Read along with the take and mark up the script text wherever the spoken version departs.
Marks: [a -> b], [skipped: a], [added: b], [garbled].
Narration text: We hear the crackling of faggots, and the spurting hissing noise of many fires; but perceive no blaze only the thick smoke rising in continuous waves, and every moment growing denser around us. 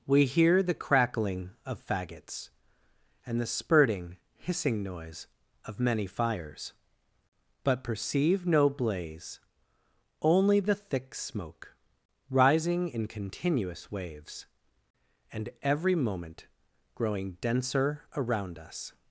We hear the crackling of faggots, and the spurting hissing noise of many fires; but perceive no blaze only the thick smoke rising in continuous waves, and every moment growing denser around us.